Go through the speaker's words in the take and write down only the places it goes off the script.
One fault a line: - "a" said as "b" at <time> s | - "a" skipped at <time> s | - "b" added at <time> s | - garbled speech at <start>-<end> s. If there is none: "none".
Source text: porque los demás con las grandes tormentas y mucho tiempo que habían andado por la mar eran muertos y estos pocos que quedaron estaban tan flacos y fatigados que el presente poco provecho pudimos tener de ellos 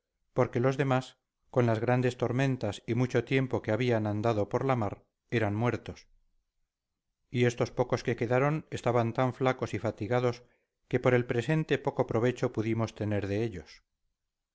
- "por" added at 11.0 s